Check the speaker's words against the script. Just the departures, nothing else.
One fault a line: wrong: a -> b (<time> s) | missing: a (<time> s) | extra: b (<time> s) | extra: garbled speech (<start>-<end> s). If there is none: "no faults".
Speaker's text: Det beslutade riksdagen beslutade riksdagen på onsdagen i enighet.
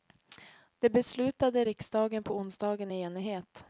missing: beslutade riksdagen (2.2 s)